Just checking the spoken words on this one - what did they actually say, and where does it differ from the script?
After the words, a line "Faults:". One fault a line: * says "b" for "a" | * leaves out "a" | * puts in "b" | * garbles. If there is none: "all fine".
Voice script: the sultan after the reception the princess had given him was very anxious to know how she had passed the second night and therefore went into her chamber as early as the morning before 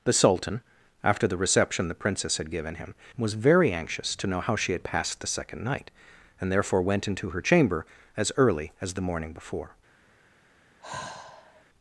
the sultan after the reception the princess had given him was very anxious to know how she had passed the second night and therefore went into her chamber as early as the morning before
Faults:
all fine